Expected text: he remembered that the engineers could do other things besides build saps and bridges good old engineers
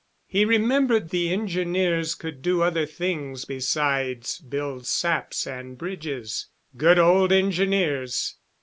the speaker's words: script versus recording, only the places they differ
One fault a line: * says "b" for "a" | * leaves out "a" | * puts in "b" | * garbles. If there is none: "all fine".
* leaves out "that"